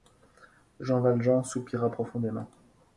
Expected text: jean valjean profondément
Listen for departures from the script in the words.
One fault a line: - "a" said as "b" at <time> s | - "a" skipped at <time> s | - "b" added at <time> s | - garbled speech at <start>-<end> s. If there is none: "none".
- "soupira" added at 1.4 s